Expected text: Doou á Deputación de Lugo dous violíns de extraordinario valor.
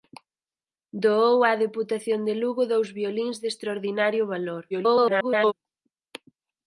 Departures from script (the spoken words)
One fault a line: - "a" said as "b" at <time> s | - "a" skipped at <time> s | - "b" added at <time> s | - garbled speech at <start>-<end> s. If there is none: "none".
- garbled speech at 4.7-5.5 s